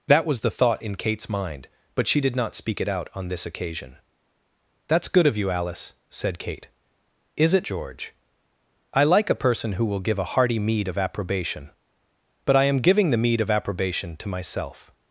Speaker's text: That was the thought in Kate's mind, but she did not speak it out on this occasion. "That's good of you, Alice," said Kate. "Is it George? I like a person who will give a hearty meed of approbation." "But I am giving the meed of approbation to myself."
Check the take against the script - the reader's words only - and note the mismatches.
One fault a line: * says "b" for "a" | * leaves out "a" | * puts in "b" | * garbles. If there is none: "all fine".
all fine